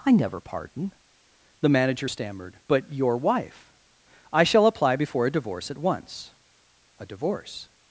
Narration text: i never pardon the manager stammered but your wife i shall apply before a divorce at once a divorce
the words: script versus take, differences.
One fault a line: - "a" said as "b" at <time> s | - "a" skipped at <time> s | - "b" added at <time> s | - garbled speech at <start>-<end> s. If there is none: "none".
none